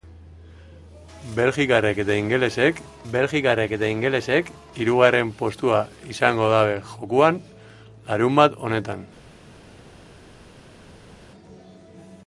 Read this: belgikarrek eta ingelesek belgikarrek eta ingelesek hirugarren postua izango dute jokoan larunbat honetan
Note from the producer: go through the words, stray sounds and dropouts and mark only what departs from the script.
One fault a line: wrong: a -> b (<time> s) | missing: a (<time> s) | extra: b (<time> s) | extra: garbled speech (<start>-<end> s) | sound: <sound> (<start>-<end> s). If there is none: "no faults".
no faults